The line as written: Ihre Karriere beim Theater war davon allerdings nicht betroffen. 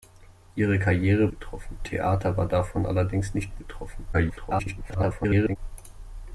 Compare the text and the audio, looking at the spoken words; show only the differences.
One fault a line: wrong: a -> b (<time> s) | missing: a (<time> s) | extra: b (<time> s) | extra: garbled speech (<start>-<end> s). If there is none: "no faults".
wrong: beim -> betroffen (1.3 s)
extra: garbled speech (4.1-5.6 s)